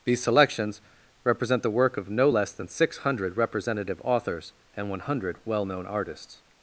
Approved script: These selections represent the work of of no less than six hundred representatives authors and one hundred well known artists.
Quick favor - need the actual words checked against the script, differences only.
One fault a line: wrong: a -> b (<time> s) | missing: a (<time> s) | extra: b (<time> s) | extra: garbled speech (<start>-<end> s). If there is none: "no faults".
missing: of (2.1 s)
wrong: representatives -> representative (3.4 s)